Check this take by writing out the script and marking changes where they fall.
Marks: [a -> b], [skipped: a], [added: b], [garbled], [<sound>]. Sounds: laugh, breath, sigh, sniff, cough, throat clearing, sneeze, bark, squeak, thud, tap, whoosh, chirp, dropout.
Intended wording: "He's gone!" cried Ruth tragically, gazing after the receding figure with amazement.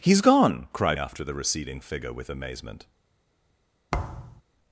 "He's gone!" cried [skipped: Ruth tragically, gazing] after the receding figure with amazement. [thud]